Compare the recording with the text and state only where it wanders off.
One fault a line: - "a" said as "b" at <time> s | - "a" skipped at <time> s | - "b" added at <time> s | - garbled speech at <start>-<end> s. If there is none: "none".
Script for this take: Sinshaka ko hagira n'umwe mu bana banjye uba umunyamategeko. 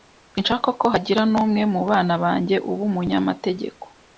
none